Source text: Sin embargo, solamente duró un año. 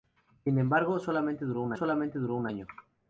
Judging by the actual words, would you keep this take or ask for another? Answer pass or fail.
fail